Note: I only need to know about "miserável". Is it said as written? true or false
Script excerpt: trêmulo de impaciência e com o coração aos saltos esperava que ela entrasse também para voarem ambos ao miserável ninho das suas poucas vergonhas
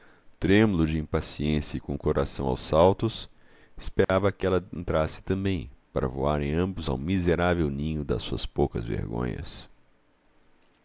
true